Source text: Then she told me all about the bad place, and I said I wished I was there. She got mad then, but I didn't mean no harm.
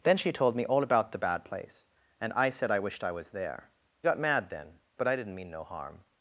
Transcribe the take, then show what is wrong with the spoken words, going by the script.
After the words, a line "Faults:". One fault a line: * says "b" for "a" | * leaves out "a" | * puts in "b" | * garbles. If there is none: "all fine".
Then she told me all about the bad place, and I said I wished I was there. Got mad then, but I didn't mean no harm.
Faults:
* leaves out "She"